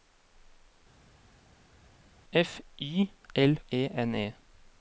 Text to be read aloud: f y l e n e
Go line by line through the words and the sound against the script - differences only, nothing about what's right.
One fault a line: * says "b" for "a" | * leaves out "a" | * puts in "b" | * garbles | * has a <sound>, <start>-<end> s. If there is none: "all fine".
all fine